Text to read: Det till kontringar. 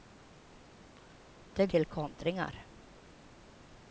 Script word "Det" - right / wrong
right